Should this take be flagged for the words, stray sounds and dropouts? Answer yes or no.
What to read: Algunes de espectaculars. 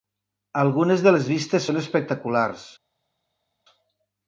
yes